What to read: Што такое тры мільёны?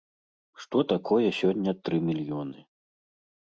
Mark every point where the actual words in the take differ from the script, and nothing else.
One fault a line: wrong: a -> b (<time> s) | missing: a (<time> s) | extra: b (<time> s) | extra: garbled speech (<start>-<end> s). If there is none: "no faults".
extra: сёння (1.4 s)